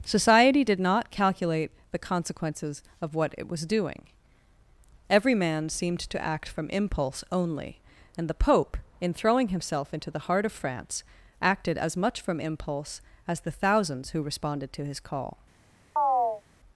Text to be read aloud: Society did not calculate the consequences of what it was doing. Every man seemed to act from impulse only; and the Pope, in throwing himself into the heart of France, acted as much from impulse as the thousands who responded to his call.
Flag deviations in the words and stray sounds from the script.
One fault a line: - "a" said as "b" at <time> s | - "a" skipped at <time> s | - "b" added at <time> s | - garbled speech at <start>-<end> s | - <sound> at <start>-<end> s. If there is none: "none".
- chirp at 16.0-16.4 s